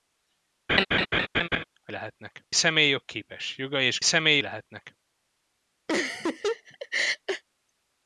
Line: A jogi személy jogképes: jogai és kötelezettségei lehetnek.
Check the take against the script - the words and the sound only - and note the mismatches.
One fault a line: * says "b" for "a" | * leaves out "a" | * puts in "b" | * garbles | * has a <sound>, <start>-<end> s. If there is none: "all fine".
* has a laugh, 0.7-1.6 s
* says "lehetnek" for "jogi"
* says "személy" for "kötelezettségei"
* has a laugh, 5.9-7.4 s